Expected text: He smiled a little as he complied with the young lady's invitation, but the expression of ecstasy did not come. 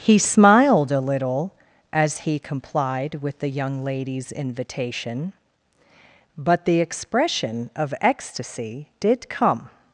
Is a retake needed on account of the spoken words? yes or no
yes